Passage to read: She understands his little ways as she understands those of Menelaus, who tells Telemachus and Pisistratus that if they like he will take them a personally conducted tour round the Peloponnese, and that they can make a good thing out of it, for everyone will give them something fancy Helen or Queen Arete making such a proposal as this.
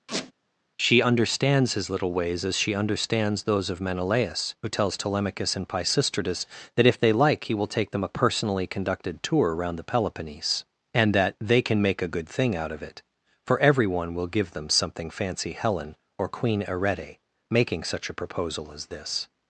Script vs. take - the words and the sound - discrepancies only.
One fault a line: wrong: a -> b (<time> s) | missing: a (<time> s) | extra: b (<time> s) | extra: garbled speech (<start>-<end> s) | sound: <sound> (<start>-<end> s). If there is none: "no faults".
sound: squeak (0.1-0.3 s)